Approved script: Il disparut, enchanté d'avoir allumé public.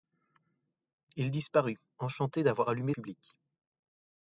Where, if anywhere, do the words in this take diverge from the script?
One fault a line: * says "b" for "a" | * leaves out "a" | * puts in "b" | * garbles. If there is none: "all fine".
all fine